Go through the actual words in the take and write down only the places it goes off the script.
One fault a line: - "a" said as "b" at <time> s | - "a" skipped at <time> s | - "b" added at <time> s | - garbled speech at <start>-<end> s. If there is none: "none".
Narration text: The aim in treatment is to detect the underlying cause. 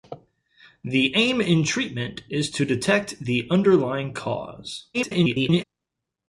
- garbled speech at 4.9-5.6 s